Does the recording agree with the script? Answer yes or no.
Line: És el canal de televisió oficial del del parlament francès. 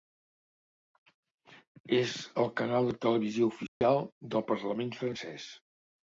no